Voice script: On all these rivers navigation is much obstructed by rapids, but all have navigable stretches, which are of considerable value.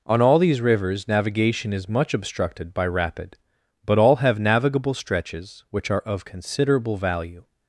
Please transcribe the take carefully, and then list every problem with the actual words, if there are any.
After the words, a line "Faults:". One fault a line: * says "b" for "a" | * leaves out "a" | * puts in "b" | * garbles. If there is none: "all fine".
On all these rivers navigation is much obstructed by rapid, but all have navigable stretches, which are of considerable value.
Faults:
* says "rapid" for "rapids"